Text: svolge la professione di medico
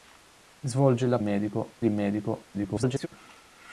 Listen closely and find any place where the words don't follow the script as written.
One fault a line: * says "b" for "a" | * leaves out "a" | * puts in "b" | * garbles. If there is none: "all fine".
* says "medico" for "professione"
* garbles